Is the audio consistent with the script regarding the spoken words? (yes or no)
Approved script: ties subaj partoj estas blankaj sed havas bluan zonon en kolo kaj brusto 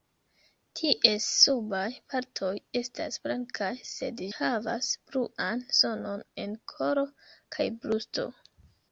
yes